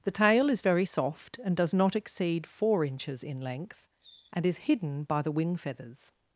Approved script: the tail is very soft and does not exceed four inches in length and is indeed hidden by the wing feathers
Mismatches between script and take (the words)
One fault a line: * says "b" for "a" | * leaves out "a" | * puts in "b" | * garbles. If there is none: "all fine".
* leaves out "indeed"